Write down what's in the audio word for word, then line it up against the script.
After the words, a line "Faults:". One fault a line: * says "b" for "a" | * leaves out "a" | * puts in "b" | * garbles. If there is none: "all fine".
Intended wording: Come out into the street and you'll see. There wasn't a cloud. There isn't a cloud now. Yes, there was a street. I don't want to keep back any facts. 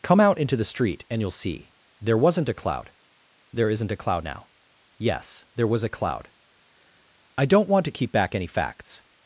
Come out into the street and you'll see. There wasn't a cloud. There isn't a cloud now. Yes, there was a cloud. I don't want to keep back any facts.
Faults:
* says "cloud" for "street"